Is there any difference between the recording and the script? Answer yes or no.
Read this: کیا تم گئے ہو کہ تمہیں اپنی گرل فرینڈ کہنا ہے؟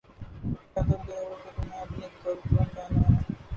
no